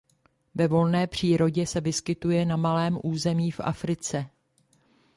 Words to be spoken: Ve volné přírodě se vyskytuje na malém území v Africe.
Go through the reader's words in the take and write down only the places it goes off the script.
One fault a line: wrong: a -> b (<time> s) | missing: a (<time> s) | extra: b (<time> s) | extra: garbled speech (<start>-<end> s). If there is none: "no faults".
no faults